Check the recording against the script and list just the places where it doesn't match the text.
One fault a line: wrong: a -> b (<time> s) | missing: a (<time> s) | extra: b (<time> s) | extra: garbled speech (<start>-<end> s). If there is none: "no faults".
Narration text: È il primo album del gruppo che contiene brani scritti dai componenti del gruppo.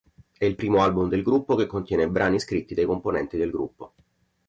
no faults